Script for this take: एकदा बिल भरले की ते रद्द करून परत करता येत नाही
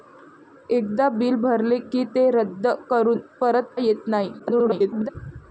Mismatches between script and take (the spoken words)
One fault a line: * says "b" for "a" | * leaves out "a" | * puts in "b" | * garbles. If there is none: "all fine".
* leaves out "करता"
* garbles